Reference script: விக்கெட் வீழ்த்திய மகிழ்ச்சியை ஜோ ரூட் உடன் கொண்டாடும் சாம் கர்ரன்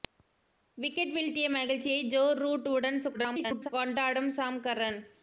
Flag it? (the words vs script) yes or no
yes